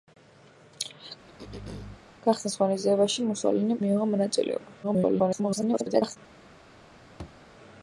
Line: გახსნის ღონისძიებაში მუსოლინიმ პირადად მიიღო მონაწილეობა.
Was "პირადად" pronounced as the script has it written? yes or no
no